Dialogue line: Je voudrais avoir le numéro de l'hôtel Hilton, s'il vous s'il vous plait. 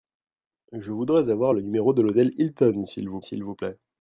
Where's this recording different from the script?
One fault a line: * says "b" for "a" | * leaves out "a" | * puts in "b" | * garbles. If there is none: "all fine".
all fine